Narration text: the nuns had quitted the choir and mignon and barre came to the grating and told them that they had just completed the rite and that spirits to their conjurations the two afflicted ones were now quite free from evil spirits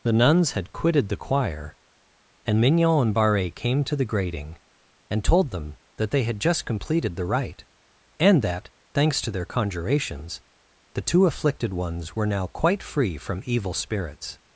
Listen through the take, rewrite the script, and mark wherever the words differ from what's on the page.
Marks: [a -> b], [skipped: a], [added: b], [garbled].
the nuns had quitted the choir and mignon and barre came to the grating and told them that they had just completed the rite and that [spirits -> thanks] to their conjurations the two afflicted ones were now quite free from evil spirits